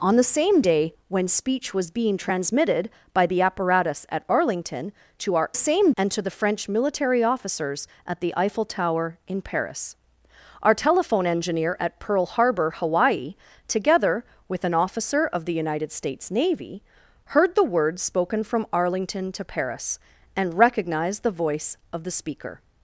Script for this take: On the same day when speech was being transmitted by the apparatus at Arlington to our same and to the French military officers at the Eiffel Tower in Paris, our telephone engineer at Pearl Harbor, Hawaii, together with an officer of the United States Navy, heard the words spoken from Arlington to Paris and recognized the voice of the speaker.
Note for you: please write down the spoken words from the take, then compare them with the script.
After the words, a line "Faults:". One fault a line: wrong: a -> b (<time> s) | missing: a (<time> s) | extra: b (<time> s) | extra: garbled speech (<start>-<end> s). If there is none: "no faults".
On the same day when speech was being transmitted by the apparatus at Arlington to our same and to the French military officers at the Eiffel Tower in Paris, our telephone engineer at Pearl Harbor, Hawaii, together with an officer of the United States Navy, heard the words spoken from Arlington to Paris and recognized the voice of the speaker.
Faults:
no faults